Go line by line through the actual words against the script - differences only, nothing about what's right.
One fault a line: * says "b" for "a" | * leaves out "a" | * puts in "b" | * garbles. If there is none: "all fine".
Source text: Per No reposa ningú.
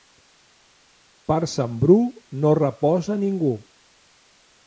* puts in "Sant Bru"